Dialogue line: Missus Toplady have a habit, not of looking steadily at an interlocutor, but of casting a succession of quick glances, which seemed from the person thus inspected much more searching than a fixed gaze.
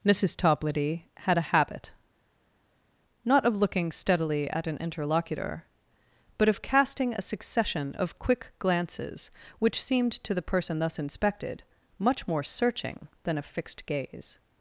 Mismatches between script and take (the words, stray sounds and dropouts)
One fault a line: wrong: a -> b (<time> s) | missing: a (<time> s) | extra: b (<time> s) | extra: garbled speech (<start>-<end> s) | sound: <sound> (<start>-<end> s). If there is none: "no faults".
wrong: have -> had (1.2 s)
wrong: from -> to (10.1 s)